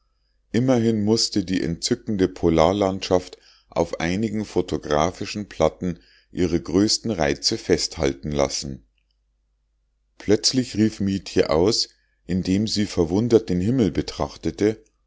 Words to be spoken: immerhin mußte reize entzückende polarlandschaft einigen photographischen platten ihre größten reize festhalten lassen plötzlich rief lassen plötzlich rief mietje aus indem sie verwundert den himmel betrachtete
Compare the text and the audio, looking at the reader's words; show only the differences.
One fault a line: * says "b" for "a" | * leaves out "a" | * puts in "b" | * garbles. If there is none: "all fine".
* says "die" for "reize"
* puts in "auf"
* leaves out "lassen plötzlich rief"